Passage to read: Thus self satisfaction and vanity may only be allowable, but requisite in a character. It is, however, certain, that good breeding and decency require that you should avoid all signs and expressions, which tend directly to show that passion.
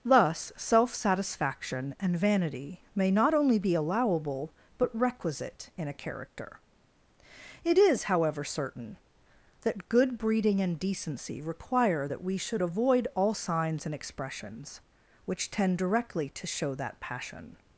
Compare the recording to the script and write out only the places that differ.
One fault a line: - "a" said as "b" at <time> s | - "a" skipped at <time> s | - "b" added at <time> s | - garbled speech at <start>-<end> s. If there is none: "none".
- "not" added at 3.1 s
- "you" said as "we" at 12.2 s